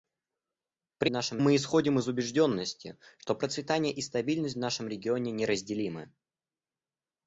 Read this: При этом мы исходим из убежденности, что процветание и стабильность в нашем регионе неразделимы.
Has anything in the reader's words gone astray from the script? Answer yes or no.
yes